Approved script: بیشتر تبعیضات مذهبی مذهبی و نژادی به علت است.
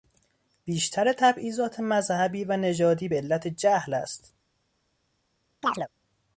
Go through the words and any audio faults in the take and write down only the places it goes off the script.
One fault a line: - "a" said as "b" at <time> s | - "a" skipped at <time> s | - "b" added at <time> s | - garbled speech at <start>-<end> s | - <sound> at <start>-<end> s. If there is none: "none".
- "مذهبی" skipped at 2.4 s
- "جهل" added at 3.5 s
- chirp at 5.6-5.9 s